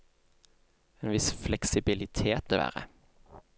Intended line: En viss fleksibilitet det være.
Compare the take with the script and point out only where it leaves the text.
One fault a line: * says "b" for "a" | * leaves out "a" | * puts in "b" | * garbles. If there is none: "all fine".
all fine